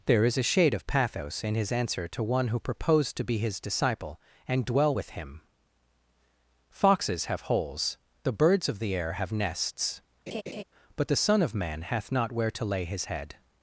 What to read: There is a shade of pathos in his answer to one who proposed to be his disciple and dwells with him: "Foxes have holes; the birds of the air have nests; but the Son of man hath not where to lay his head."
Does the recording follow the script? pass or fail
fail